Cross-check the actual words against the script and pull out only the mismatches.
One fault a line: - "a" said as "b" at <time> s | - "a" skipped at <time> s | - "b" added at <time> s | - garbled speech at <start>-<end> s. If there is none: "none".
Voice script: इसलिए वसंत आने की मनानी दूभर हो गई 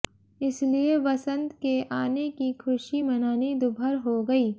- "के" added at 1.6 s
- "खुशी" added at 2.6 s